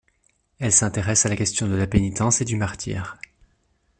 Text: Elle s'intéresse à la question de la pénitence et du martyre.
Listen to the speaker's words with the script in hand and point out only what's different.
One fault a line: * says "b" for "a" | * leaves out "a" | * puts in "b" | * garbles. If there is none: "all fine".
all fine